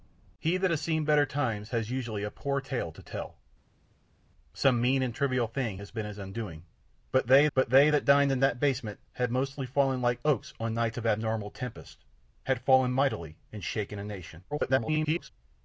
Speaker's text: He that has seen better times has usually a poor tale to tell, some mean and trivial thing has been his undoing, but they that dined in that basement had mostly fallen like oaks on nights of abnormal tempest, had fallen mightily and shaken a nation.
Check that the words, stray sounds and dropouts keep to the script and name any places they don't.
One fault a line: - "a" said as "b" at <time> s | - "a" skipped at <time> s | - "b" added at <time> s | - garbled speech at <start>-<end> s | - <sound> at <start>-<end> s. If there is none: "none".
- "but they" added at 7.5 s
- garbled speech at 14.5-15.3 s